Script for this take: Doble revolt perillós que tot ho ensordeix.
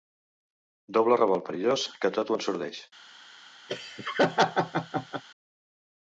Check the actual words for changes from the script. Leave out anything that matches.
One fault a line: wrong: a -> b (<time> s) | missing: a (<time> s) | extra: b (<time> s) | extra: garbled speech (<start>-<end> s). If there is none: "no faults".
no faults